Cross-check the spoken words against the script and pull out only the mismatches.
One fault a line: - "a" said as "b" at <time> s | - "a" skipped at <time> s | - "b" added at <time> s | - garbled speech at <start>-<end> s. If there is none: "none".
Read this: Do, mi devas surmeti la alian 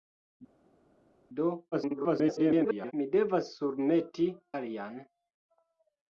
- garbled speech at 1.7-2.9 s
- "la" skipped at 4.3 s